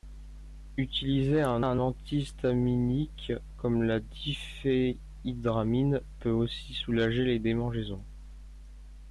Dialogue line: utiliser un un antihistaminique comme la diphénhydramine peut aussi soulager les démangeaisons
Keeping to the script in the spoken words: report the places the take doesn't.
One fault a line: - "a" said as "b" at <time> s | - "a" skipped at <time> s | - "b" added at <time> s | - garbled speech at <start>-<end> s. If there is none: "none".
none